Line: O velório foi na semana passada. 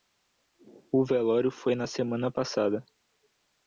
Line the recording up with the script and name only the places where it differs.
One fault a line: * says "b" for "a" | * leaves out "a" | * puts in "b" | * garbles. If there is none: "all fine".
all fine